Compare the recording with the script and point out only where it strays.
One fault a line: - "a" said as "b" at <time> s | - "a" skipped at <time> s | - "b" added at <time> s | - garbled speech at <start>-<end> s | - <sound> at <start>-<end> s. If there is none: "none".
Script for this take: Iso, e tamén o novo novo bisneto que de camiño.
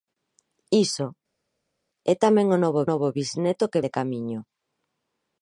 none